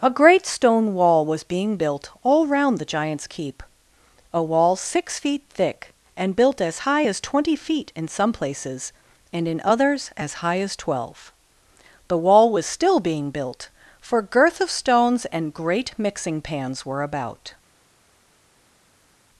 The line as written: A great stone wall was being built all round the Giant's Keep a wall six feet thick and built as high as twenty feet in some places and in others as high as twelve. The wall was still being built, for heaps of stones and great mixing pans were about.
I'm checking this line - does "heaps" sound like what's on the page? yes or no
no